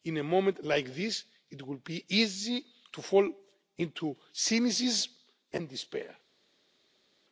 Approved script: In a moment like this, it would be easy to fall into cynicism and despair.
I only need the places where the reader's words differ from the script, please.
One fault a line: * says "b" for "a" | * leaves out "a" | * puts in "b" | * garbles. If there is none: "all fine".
all fine